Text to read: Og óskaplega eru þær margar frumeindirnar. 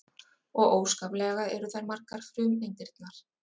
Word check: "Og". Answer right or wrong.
right